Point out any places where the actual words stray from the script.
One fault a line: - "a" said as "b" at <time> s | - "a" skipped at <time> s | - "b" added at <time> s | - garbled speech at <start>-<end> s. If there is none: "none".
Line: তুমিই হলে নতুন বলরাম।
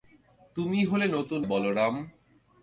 none